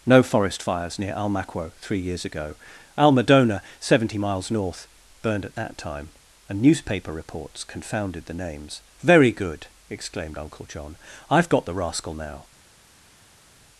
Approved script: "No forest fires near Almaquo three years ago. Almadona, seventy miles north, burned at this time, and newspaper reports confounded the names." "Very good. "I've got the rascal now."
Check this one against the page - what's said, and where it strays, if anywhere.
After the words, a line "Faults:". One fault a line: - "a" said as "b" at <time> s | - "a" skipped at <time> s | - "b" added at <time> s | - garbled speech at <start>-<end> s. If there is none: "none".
"No forest fires near Almaquo three years ago. Almadona, seventy miles north, burned at that time, and newspaper reports confounded the names." "Very good!" exclaimed Uncle John. "I've got the rascal now."
Faults:
- "this" said as "that" at 5.5 s
- "exclaimed Uncle John" added at 9.9 s